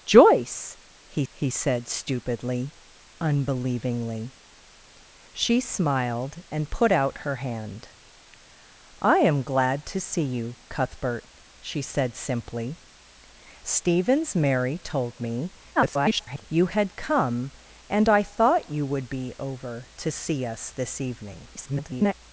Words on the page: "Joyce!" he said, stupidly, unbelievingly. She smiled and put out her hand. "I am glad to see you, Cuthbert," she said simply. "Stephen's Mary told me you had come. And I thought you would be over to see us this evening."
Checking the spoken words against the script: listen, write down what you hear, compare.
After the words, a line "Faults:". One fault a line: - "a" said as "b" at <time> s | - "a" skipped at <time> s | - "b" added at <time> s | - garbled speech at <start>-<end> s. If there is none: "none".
"Joyce!" he he said, stupidly, unbelievingly. She smiled and put out her hand. "I am glad to see you, Cuthbert," she said simply. "Stephen's Mary told me [garbled] you had come. And I thought you would be over to see us this evening." [garbled]
Faults:
- "he" added at 1.3 s
- garbled speech at 15.8-16.4 s
- garbled speech at 21.5-22.1 s